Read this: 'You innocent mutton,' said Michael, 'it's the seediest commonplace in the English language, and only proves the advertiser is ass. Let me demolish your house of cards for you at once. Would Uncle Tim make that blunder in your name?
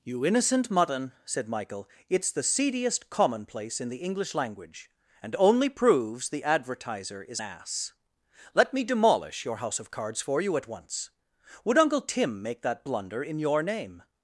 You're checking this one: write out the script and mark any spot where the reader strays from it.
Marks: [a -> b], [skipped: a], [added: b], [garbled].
'You innocent mutton,' said Michael, 'it's the seediest commonplace in the English language, and only proves the advertiser is ass. Let me demolish your house of cards for you at once. Would Uncle Tim make that blunder in your name?